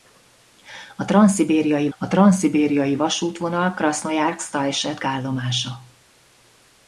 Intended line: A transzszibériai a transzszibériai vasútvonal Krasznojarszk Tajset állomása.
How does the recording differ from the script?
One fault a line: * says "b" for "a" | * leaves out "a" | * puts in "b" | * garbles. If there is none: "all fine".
all fine